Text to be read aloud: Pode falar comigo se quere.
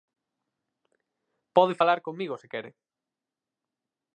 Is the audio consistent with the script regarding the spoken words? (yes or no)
yes